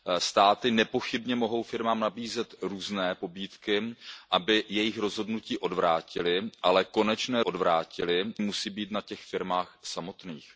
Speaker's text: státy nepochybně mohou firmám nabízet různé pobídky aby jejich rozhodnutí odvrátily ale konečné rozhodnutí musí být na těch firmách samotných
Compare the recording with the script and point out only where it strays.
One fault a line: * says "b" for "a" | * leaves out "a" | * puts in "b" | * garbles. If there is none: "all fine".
* says "odvrátily" for "rozhodnutí"